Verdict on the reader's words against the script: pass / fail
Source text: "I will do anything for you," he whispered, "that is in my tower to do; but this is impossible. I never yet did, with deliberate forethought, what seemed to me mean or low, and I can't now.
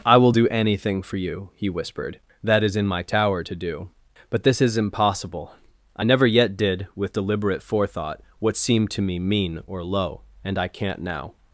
pass